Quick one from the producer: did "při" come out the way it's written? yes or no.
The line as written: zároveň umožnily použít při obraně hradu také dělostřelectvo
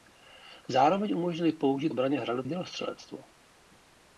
no